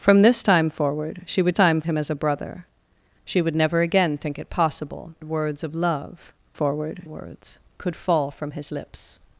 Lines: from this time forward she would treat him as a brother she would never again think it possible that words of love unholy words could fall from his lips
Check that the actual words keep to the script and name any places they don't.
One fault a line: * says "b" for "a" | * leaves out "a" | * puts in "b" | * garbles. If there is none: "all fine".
* says "time" for "treat"
* leaves out "that"
* says "forward" for "unholy"